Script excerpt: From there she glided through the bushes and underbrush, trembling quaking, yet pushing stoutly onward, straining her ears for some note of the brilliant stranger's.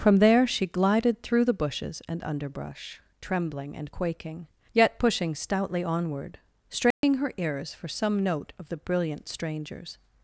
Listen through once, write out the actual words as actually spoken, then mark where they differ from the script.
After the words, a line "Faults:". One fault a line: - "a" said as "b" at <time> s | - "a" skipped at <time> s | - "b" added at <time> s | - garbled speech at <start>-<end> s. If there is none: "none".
From there she glided through the bushes and underbrush, trembling and quaking, yet pushing stoutly onward, straining her ears for some note of the brilliant stranger's.
Faults:
- "and" added at 3.8 s